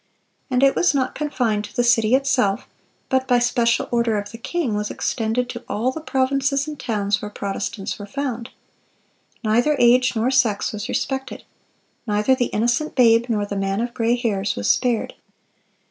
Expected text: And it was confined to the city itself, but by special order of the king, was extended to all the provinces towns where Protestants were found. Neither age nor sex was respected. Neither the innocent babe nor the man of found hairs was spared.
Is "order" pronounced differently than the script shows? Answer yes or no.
no